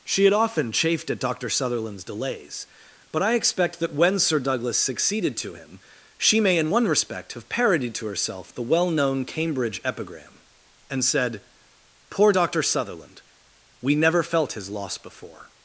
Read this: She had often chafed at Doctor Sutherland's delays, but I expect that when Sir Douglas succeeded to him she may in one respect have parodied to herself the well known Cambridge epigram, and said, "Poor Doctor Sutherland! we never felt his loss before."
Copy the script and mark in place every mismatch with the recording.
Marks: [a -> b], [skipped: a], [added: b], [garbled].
She had often chafed at Doctor Sutherland's delays, but I expect that when Sir Douglas succeeded to him she may in one respect have parodied to herself the well known Cambridge epigram, and said, "Poor Doctor Sutherland! we never felt his loss before."